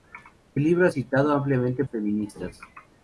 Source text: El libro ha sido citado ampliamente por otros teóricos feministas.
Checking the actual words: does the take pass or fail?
fail